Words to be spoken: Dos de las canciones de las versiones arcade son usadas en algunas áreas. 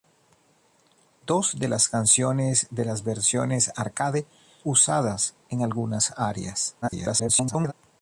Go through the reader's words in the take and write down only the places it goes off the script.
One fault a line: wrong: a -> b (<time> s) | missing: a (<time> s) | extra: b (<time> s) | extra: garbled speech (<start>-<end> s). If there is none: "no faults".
missing: son (4.2 s)
extra: garbled speech (6.8-7.7 s)